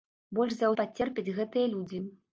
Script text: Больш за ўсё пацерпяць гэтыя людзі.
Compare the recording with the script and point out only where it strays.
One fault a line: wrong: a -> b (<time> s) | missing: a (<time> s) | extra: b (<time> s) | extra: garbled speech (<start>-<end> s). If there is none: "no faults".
missing: ўсё (0.7 s)